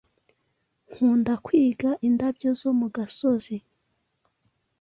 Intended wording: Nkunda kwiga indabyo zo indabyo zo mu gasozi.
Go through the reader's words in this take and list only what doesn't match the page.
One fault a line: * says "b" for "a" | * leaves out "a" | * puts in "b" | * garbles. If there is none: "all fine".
* leaves out "indabyo zo"